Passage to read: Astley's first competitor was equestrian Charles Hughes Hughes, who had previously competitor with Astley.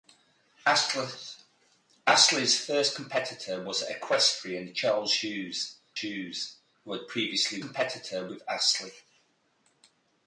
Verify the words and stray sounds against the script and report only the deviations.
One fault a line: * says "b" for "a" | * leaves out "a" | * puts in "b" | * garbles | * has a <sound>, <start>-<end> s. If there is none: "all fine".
all fine